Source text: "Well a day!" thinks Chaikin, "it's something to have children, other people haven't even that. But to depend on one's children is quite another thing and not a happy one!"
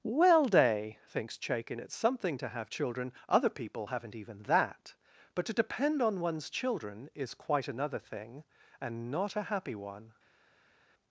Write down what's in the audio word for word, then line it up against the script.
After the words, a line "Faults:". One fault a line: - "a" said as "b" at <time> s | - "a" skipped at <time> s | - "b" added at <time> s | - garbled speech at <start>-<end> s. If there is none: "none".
"Well day!" thinks Chaikin, "it's something to have children, other people haven't even that. But to depend on one's children is quite another thing and not a happy one!"
Faults:
- "a" skipped at 0.5 s